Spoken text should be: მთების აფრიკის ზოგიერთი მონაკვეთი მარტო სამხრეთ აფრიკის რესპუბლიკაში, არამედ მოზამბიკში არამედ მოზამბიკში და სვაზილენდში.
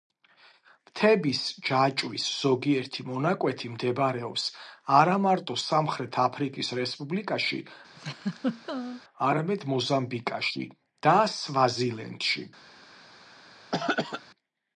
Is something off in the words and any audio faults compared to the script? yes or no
yes